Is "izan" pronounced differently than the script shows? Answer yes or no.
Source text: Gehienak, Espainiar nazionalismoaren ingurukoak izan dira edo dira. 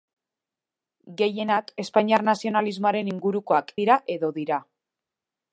yes